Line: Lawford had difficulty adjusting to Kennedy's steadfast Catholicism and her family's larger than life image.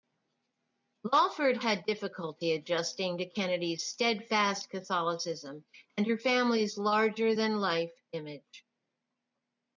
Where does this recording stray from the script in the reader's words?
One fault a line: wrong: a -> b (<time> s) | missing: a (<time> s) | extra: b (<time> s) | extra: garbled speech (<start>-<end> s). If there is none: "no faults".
no faults